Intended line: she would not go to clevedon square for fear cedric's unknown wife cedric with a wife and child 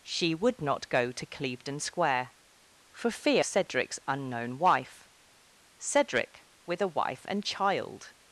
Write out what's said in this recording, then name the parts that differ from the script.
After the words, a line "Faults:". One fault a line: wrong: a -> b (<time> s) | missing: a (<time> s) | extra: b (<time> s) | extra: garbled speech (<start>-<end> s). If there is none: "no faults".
she would not go to clevedon square for fear cedric's unknown wife cedric with a wife and child
Faults:
no faults